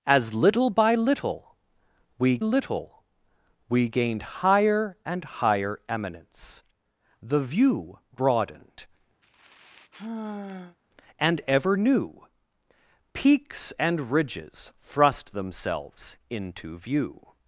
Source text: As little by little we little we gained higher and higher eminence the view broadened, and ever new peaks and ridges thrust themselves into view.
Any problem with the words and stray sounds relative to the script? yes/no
yes